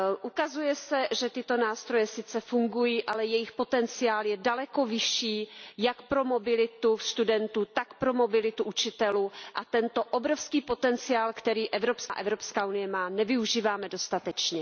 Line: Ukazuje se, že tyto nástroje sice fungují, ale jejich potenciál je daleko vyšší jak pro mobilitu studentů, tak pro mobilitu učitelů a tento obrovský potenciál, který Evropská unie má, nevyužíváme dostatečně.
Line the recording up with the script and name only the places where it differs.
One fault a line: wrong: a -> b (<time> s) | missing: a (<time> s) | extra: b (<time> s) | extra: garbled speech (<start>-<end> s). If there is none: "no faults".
no faults